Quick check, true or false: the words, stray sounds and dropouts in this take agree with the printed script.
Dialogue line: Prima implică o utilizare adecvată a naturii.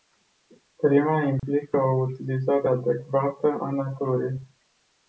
false